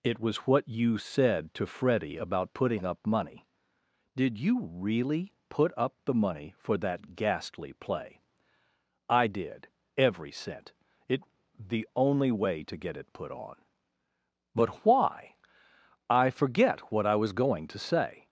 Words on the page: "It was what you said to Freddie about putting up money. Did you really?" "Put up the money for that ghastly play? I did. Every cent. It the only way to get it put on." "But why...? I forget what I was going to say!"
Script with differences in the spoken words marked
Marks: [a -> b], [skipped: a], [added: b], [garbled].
"It was what you said to Freddie about putting up money. Did you really?" "Put up the money for that ghastly play? I did. Every cent. It the only way to get it put on." "But why...? I forget what I was going to say!"